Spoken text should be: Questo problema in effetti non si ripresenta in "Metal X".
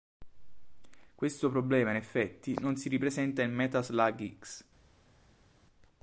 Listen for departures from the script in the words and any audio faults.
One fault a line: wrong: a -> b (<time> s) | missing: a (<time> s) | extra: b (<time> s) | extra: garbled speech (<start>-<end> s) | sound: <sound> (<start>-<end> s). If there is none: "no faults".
extra: Slug (3.9 s)